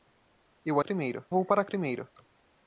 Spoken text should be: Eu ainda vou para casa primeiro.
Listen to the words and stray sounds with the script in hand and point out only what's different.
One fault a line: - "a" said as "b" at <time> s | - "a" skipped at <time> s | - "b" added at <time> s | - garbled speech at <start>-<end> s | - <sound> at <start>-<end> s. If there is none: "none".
- "ainda" said as "primeiro" at 0.8 s
- "casa" skipped at 1.7 s